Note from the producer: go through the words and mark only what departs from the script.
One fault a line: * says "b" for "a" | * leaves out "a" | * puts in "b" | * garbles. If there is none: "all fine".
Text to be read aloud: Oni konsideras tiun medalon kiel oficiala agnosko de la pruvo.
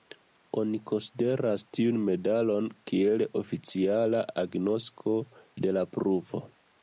all fine